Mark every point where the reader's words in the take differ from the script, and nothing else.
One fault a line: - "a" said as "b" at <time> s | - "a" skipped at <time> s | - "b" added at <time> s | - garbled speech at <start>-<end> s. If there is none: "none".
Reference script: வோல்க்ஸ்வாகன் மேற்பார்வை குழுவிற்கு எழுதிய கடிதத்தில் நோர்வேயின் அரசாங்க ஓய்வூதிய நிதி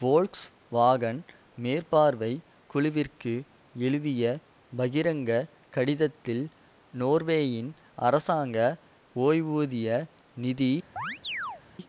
- "பகிரங்க" added at 4.8 s